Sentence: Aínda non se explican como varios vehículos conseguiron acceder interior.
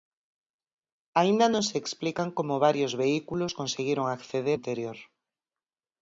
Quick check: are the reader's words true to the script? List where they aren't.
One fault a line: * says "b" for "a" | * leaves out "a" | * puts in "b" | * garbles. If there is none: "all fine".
all fine